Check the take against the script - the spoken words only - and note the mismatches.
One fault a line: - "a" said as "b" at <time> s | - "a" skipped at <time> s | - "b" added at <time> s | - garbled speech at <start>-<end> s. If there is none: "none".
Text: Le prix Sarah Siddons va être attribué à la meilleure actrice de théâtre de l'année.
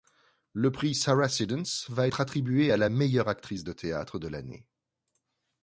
none